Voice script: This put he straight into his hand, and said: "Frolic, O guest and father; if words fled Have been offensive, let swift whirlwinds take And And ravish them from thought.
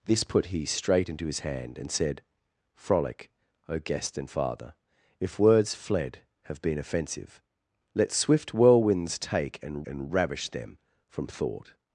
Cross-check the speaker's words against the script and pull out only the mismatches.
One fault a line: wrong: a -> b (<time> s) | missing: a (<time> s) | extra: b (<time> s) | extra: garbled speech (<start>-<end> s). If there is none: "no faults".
no faults